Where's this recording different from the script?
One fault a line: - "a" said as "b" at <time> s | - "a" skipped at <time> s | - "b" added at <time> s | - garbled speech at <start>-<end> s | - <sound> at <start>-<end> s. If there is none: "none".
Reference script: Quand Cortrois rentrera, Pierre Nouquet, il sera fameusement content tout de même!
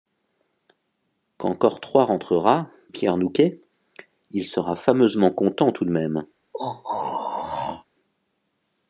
- throat clearing at 6.5-7.8 s